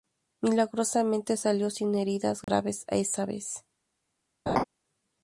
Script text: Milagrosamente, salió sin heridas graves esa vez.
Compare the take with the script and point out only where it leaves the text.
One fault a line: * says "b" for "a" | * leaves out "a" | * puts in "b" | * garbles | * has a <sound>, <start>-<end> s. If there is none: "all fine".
* has a dropout, 2.4-2.5 s
* has a laugh, 4.5-4.6 s